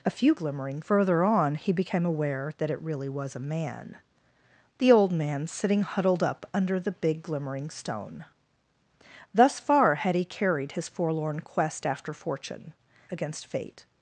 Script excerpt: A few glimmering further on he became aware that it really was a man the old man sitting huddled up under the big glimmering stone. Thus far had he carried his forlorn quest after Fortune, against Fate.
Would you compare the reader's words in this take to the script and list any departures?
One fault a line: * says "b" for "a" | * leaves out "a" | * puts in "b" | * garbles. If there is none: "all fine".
all fine